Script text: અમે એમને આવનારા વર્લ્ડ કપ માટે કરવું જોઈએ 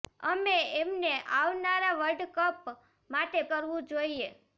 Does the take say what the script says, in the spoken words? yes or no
yes